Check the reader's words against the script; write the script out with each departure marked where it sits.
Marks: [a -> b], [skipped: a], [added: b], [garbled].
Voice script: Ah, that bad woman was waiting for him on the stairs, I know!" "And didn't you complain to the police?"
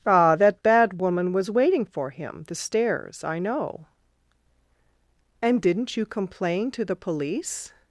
Ah, that bad woman was waiting for him [skipped: on] the stairs, I know!" "And didn't you complain to the police?"